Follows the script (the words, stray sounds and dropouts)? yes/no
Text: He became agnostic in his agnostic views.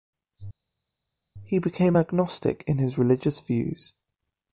no